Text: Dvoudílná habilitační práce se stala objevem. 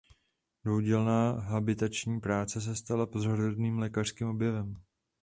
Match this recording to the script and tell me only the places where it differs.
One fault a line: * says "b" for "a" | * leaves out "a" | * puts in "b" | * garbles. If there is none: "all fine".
* puts in "pozoruhodným lékařským"